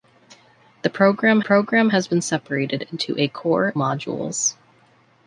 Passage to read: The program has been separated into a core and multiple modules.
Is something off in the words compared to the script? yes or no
yes